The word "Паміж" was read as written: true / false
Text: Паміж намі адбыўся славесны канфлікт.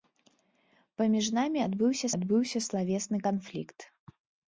true